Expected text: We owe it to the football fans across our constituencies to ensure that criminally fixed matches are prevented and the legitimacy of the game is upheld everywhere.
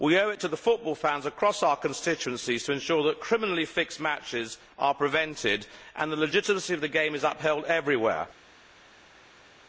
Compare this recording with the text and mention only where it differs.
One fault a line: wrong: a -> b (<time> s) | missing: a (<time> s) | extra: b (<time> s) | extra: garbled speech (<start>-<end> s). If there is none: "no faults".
no faults